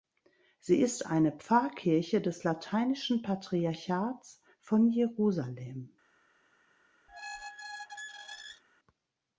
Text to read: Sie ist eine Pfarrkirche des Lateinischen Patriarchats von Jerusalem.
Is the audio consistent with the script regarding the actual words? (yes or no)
yes